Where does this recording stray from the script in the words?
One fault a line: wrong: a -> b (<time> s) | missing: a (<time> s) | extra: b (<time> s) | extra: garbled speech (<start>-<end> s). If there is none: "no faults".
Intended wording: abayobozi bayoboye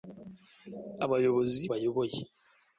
no faults